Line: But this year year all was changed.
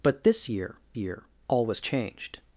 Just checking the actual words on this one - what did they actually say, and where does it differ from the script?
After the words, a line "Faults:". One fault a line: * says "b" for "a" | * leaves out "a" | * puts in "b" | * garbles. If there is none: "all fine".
But this year year all was changed.
Faults:
all fine